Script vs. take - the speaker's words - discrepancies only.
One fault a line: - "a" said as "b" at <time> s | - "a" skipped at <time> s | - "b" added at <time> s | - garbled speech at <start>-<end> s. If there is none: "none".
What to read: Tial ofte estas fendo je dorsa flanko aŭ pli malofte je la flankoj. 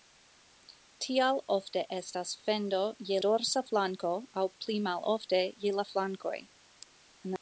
none